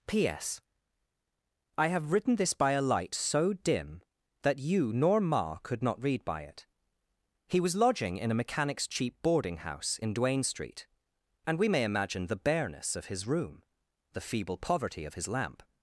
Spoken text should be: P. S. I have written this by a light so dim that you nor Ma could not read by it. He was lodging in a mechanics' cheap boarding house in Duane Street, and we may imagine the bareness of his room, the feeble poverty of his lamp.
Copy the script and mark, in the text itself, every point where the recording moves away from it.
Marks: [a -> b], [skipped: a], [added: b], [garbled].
P. S. I have written this by a light so dim that you nor Ma could not read by it. He was lodging in a mechanics' cheap boarding house in Duane Street, and we may imagine the bareness of his room, the feeble poverty of his lamp.